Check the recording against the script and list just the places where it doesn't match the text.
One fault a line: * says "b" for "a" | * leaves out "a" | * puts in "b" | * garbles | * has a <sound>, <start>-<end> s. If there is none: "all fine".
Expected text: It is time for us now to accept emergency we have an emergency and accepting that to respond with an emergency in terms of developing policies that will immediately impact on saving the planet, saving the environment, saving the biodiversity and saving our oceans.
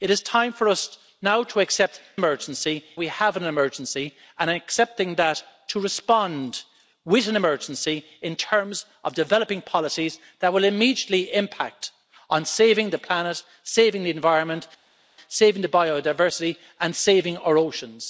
all fine